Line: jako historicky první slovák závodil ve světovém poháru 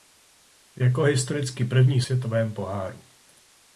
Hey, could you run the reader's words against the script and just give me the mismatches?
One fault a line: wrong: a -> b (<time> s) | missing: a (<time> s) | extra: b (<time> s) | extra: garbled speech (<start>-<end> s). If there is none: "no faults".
missing: slovák závodil ve (2.0 s)